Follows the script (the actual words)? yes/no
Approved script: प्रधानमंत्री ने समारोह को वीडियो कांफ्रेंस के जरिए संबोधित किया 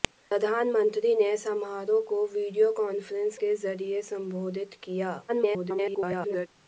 no